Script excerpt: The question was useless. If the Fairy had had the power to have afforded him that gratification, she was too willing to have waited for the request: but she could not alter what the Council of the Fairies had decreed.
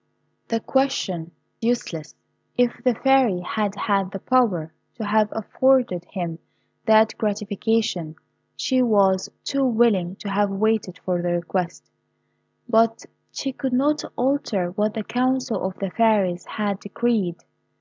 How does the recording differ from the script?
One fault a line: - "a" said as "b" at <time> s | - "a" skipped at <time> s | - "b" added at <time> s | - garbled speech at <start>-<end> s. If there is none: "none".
- "was" skipped at 1.3 s